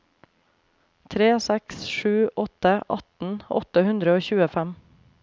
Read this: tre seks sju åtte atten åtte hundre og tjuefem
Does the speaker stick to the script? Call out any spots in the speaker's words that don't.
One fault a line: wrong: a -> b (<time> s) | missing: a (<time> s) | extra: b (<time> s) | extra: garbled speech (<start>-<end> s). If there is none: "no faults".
no faults